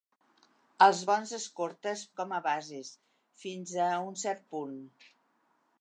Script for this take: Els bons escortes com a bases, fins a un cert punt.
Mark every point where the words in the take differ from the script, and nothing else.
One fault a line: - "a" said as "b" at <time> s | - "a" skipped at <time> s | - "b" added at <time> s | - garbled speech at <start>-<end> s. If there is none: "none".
none